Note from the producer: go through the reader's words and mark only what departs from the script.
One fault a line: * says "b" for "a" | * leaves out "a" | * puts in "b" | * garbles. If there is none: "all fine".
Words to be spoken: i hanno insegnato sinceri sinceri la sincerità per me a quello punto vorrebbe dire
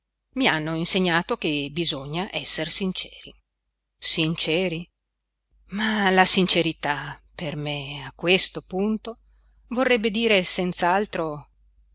* puts in "che bisogna esser"
* puts in "ma"
* says "questo" for "quello"